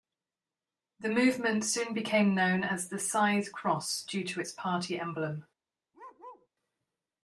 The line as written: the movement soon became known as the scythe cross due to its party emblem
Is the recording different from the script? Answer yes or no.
no